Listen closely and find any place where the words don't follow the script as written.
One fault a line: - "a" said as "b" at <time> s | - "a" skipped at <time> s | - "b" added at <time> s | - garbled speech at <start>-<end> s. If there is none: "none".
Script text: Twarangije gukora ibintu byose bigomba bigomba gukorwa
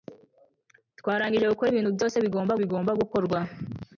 none